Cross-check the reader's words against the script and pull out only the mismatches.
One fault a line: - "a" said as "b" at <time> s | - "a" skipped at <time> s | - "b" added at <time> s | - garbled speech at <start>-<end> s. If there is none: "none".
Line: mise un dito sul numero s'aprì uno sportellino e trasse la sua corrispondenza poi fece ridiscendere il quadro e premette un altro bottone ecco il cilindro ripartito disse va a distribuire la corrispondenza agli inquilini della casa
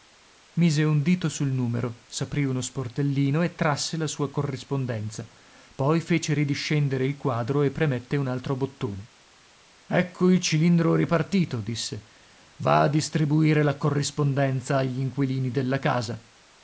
none